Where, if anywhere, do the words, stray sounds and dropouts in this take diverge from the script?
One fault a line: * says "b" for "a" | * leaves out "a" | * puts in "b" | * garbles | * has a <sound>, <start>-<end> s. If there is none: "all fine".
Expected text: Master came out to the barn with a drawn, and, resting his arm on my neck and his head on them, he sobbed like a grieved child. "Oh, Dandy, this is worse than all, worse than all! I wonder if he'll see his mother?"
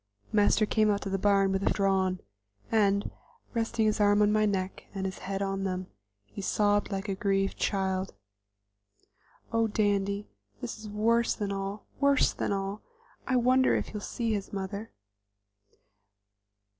all fine